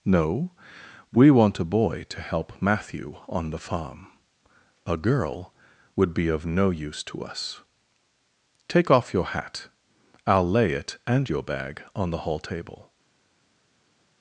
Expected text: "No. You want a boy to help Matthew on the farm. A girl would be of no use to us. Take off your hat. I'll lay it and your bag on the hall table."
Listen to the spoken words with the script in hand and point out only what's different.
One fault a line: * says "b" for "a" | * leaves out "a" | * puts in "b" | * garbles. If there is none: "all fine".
* says "We" for "You"